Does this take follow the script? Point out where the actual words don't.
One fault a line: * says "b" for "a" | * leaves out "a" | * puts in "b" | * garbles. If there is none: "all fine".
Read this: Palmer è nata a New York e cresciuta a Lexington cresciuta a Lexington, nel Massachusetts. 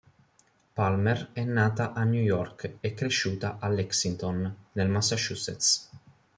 * leaves out "cresciuta a Lexington"